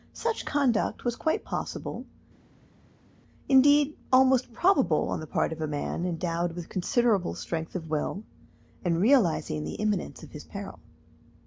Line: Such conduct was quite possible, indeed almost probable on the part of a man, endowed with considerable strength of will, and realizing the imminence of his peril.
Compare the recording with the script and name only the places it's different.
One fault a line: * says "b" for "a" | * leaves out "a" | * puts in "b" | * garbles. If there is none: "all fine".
all fine